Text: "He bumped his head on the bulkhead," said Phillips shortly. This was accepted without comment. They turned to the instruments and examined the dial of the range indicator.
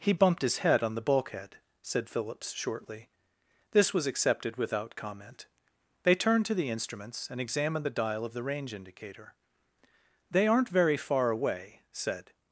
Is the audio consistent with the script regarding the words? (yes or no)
no